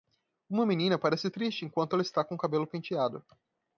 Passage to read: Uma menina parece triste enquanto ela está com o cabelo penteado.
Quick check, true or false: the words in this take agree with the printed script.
true